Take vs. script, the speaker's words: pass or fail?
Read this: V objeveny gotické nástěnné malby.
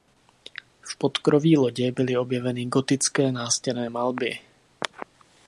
fail